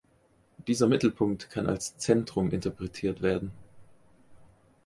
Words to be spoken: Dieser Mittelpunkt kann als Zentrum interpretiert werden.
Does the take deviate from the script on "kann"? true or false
false